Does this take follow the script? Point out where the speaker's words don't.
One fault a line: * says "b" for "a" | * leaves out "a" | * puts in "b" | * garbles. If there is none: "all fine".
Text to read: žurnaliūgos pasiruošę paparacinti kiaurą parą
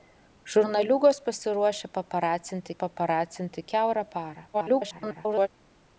* puts in "paparacinti"
* garbles